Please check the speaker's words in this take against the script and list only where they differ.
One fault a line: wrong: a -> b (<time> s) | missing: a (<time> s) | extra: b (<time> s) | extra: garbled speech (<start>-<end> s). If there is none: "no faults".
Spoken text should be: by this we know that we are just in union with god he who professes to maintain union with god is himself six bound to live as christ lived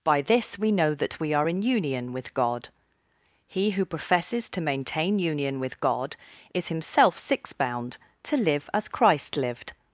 missing: just (1.5 s)